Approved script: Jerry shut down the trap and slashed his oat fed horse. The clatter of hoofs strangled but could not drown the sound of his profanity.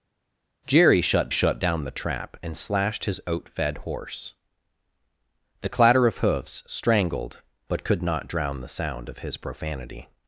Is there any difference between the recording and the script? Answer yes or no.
yes